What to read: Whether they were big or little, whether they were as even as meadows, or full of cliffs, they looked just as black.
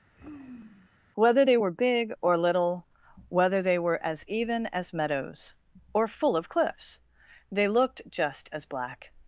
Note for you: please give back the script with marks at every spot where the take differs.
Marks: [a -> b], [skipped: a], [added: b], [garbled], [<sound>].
[sigh] Whether they were big or little, whether they were as even as meadows, or full of cliffs, they looked just as black.